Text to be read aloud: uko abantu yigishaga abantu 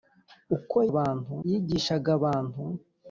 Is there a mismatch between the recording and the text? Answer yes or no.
no